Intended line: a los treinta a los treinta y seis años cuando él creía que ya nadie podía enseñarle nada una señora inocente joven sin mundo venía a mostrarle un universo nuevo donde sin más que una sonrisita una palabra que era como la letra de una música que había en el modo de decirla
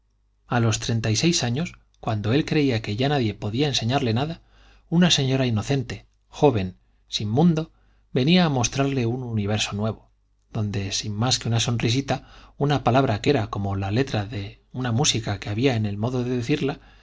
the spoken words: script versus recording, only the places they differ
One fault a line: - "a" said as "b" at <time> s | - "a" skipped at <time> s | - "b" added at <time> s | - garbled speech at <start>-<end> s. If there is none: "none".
- "a los treinta" skipped at 1.1 s